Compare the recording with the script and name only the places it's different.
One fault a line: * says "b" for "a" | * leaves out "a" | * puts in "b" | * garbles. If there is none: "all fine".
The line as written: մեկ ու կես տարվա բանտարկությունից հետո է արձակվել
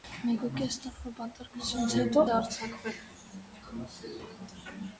all fine